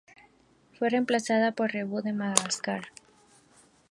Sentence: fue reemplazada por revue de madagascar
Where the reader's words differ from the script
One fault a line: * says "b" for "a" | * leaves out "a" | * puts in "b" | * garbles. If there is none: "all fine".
all fine